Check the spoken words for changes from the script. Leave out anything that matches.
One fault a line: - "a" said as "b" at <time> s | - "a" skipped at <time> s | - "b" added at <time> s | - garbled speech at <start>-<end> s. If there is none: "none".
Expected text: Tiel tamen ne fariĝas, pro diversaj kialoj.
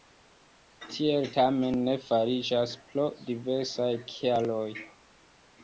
none